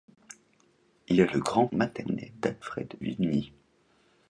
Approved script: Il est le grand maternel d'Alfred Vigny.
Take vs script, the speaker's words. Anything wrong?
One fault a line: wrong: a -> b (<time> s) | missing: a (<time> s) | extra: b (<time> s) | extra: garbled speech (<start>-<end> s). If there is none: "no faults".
no faults